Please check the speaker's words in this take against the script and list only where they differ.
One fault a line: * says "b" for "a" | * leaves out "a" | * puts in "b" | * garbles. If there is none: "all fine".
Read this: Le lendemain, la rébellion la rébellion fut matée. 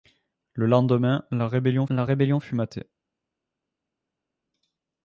all fine